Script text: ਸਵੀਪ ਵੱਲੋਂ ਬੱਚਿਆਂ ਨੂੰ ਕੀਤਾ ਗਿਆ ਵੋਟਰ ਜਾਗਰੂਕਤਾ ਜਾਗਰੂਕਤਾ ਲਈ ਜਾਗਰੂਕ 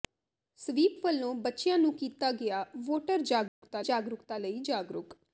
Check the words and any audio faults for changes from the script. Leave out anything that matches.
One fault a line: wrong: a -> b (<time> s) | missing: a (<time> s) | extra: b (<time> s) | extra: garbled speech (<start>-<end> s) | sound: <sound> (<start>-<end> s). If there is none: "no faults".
sound: dropout (3.5-3.6 s)